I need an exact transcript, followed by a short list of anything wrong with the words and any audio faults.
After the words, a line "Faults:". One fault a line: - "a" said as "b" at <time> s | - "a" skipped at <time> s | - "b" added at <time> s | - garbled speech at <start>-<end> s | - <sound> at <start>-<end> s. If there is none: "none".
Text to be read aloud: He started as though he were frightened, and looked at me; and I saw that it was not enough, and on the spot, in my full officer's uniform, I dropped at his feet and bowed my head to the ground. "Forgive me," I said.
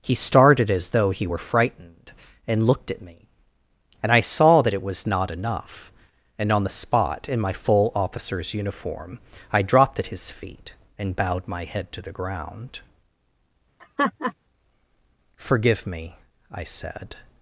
He started as though he were frightened, and looked at me; and I saw that it was not enough, and on the spot, in my full officer's uniform, I dropped at his feet and bowed my head to the ground. "Forgive me," I said.
Faults:
- laugh at 13.8-14.3 s